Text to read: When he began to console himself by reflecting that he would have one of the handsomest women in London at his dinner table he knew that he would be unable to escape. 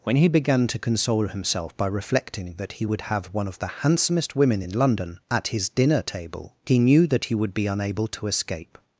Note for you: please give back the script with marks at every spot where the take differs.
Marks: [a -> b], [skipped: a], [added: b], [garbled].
When he began to console himself by reflecting that he would have one of the handsomest women in London at his dinner table he knew that he would be unable to escape.